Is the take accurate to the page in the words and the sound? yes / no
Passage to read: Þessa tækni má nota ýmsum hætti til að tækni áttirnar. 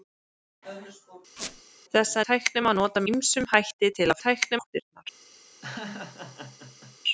no